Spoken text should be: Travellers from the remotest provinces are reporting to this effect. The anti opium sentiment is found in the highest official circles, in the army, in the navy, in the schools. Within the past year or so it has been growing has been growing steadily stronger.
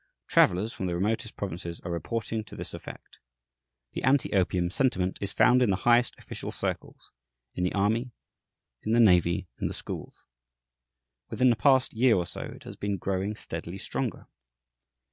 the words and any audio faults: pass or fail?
fail